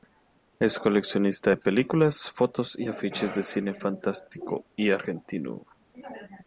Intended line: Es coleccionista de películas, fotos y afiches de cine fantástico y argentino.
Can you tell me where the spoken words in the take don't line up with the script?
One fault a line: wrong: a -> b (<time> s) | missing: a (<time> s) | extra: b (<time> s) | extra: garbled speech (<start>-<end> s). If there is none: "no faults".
no faults